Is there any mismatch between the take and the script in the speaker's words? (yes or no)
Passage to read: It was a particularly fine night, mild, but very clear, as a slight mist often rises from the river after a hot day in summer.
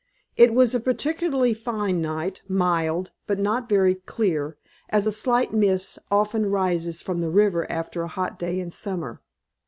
yes